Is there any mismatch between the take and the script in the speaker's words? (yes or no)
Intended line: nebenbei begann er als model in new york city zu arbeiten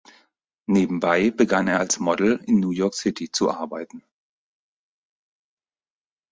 no